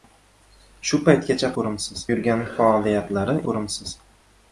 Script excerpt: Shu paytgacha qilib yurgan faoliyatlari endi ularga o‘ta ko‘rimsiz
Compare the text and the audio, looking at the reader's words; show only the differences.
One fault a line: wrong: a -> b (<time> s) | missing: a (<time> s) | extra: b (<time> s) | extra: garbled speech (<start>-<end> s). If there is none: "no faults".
wrong: qilib -> ko‘rimsiz (1.6 s)
missing: endi ularga o‘ta (3.4 s)